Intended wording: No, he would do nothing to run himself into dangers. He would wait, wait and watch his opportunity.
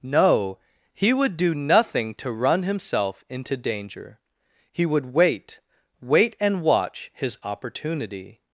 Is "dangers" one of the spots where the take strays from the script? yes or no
yes